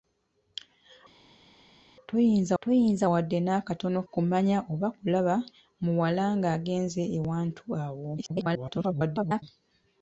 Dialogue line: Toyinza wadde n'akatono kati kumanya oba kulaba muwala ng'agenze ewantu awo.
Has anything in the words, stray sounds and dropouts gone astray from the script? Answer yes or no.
yes